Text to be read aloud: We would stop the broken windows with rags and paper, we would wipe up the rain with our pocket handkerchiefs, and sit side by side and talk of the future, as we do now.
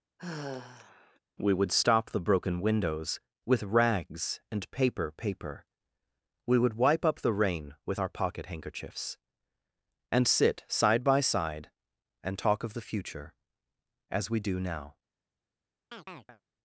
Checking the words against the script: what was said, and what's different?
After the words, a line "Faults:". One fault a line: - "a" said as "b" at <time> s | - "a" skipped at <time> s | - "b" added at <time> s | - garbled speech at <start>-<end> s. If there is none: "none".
We would stop the broken windows with rags and paper paper, we would wipe up the rain with our pocket handkerchiefs, and sit side by side and talk of the future, as we do now.
Faults:
- "paper" added at 5.2 s